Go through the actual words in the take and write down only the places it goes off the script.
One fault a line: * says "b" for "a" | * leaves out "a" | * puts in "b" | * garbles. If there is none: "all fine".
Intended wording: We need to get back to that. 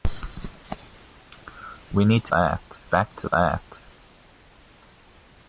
* says "that" for "get"